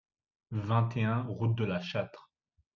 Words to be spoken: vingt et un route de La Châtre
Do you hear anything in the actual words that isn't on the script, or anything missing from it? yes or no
no